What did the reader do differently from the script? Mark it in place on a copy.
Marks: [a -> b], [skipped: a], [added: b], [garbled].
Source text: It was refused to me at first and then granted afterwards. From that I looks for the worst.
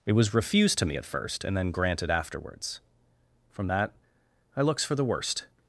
It was refused to me at first and then granted afterwards. From that I looks for the worst.